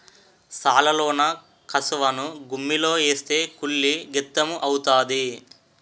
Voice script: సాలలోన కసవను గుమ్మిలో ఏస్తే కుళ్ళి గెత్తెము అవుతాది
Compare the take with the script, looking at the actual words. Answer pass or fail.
pass